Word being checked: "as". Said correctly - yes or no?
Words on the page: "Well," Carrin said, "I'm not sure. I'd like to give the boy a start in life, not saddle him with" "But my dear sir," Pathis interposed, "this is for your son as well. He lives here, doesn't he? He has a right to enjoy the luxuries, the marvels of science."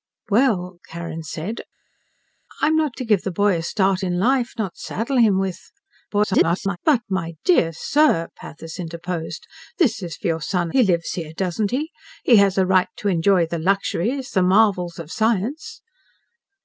no